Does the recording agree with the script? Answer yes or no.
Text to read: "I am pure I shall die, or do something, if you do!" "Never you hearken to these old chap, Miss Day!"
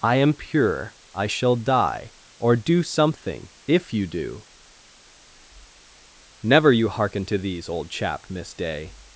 yes